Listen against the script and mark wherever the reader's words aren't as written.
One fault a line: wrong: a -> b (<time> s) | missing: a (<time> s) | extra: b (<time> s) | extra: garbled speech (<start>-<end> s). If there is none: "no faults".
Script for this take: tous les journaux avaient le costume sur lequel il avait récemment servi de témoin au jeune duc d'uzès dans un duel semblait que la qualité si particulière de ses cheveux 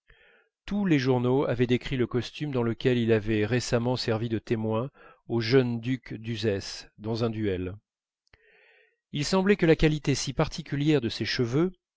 extra: décrit (1.7 s)
wrong: sur -> dans (2.5 s)
extra: il (9.1 s)